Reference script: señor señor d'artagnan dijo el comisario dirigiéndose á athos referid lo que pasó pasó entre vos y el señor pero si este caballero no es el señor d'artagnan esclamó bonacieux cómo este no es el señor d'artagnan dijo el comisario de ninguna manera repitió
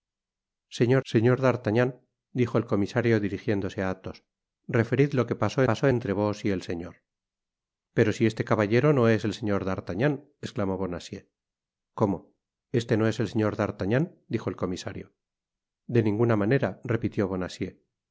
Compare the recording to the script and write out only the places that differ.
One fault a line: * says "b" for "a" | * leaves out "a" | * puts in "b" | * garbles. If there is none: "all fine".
all fine